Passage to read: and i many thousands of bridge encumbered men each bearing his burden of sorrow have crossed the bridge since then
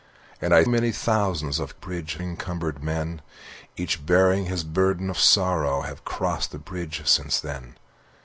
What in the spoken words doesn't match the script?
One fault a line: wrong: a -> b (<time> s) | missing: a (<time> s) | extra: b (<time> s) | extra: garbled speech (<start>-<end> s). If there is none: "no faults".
no faults